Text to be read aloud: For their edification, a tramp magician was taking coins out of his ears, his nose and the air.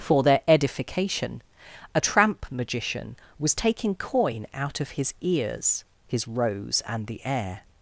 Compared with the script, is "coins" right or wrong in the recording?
wrong